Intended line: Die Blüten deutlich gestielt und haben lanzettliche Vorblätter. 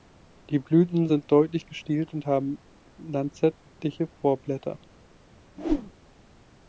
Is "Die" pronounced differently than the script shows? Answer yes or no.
no